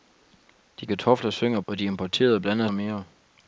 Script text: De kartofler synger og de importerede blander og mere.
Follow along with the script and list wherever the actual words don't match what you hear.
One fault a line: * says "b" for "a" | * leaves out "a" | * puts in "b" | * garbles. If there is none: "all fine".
all fine